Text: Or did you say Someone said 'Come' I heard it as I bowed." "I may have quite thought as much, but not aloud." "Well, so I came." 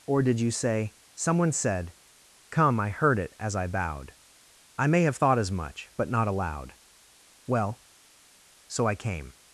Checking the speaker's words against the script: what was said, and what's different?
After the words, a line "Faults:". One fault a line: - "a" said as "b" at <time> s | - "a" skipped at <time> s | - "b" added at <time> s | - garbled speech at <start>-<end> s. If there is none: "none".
Or did you say Someone said 'Come' I heard it as I bowed." "I may have thought as much, but not aloud." "Well, so I came."
Faults:
- "quite" skipped at 5.2 s